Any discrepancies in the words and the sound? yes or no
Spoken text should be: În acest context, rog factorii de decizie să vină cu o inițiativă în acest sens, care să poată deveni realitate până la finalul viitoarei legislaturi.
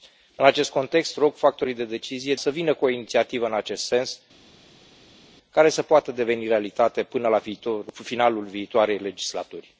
no